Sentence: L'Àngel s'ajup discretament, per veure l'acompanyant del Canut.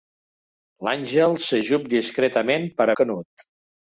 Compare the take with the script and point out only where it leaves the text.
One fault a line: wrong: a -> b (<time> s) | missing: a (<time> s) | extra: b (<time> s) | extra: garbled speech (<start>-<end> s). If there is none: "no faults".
missing: veure l'acompanyant del (2.9 s)